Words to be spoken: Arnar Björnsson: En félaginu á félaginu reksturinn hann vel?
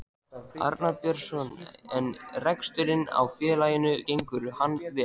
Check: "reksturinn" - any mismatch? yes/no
yes